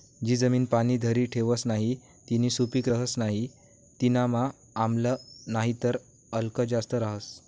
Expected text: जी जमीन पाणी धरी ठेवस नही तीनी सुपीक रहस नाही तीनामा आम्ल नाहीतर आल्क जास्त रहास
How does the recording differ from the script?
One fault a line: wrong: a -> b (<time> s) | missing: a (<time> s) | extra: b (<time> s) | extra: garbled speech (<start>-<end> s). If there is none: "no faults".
no faults